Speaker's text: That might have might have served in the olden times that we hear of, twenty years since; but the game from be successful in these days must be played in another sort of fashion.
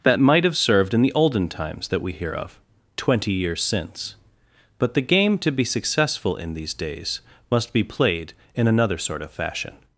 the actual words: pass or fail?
fail